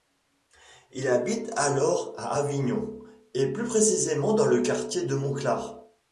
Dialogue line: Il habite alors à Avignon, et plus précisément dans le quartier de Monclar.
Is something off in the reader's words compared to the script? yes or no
no